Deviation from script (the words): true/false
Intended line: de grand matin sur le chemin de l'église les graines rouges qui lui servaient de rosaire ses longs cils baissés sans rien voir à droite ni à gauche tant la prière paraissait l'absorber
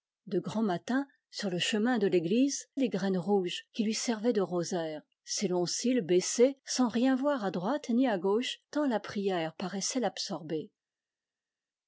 false